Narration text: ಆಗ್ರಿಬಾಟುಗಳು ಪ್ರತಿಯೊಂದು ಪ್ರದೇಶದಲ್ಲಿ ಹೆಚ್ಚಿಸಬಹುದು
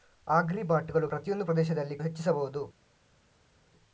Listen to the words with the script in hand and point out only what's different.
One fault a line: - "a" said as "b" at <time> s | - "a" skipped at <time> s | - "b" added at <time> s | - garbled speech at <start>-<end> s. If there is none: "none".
none